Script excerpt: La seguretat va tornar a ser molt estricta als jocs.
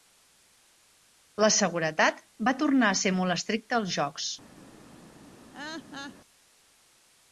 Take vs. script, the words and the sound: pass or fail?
fail